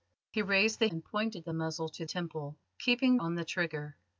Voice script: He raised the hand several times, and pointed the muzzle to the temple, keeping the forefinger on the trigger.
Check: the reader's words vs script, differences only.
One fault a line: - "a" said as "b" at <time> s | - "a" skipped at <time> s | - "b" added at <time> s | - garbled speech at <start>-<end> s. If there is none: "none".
- "hand several times" skipped at 0.9 s
- "the" skipped at 2.1 s
- "the forefinger" skipped at 3.2 s